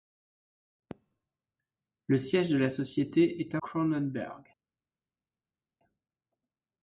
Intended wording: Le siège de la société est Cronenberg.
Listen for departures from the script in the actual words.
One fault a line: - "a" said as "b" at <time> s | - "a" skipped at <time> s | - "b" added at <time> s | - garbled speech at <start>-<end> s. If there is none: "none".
none